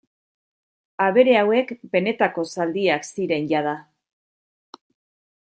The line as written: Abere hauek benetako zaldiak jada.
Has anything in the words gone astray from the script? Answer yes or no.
yes